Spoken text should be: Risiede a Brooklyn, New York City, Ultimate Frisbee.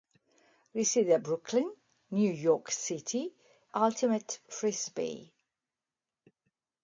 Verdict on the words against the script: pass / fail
pass